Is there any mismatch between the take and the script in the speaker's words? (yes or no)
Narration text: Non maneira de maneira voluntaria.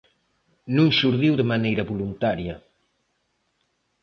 yes